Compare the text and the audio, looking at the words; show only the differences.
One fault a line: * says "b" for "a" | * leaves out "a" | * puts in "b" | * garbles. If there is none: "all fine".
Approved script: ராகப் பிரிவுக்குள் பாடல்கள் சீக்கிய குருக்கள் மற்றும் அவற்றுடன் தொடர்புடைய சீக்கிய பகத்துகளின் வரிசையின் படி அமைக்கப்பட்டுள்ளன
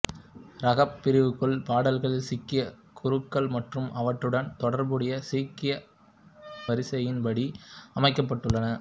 * leaves out "பகத்துகளின்"